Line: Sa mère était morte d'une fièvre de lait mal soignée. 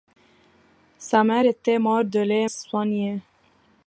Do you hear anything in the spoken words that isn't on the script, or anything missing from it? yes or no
yes